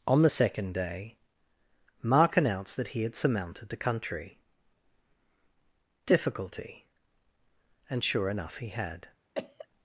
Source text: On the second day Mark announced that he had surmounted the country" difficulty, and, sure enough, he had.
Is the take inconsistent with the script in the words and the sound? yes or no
yes